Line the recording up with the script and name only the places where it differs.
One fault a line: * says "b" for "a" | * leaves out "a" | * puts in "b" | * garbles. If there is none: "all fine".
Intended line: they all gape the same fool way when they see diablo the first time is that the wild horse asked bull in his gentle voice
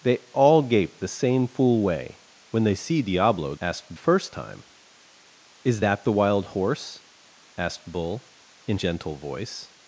* says "asked" for "the"
* leaves out "his"